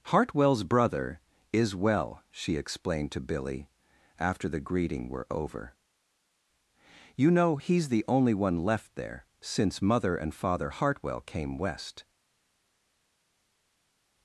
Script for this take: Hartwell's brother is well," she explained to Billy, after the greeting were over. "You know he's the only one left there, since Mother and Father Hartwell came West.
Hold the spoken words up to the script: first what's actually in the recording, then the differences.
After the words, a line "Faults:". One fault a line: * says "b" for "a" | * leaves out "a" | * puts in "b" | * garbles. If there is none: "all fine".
Hartwell's brother is well," she explained to Billy, after the greeting were over. "You know he's the only one left there, since Mother and Father Hartwell came West.
Faults:
all fine